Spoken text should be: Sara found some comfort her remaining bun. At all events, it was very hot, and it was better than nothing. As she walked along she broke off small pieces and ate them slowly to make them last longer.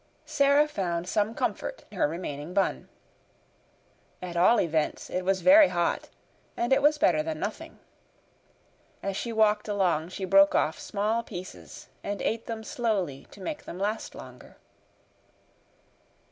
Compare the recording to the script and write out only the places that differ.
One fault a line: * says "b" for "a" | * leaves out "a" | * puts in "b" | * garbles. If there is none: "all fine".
all fine